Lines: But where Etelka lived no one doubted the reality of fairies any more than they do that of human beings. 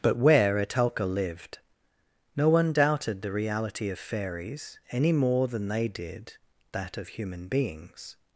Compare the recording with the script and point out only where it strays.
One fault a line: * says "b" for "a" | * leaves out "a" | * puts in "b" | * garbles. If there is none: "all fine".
* says "did" for "do"